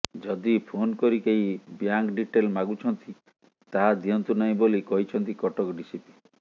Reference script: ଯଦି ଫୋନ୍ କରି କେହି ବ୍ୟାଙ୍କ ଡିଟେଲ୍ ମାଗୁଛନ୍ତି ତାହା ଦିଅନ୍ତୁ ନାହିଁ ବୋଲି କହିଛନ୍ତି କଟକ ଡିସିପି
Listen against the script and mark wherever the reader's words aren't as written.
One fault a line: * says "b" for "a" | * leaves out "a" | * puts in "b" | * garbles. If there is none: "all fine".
all fine